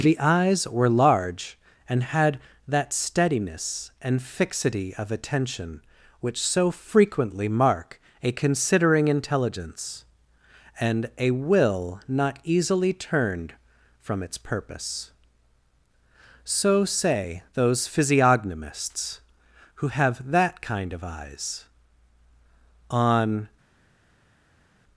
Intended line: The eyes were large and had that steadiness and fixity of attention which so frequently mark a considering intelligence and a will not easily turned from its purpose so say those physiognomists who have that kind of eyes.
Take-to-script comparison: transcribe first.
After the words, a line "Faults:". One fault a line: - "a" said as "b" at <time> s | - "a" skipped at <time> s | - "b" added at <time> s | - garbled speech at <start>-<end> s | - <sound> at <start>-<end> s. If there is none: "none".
The eyes were large and had that steadiness and fixity of attention which so frequently mark a considering intelligence and a will not easily turned from its purpose so say those physiognomists who have that kind of eyes. On
Faults:
- "On" added at 22.9 s